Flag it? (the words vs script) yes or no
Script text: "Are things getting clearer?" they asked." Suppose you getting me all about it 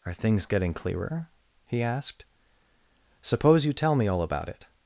yes